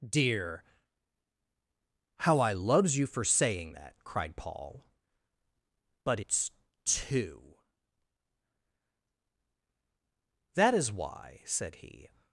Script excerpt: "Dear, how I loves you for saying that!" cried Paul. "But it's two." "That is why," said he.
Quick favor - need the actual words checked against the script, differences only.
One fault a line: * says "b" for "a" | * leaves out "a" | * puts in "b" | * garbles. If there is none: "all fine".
all fine